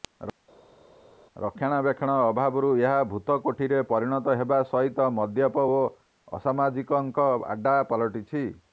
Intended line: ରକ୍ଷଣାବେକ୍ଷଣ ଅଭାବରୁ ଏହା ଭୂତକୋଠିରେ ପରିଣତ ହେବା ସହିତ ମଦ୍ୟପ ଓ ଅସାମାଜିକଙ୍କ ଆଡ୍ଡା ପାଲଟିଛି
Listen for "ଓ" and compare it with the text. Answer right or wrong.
right